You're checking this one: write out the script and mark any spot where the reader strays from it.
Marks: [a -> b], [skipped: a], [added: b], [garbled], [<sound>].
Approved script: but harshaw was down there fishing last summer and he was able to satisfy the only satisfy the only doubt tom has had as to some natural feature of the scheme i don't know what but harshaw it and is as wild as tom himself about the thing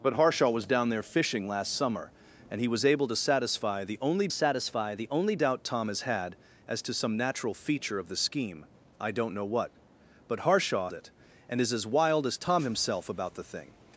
but harshaw was down there fishing last summer and he was able to satisfy the only satisfy the only doubt tom has had as to some natural feature of the scheme i don't know what but harshaw it and is as wild as tom himself about the thing